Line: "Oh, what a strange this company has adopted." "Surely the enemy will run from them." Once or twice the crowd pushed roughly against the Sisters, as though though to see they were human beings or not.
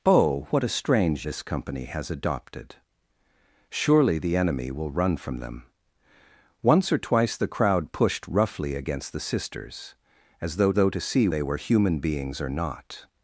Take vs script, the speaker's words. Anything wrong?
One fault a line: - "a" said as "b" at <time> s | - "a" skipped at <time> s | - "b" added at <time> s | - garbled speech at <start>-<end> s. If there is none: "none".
none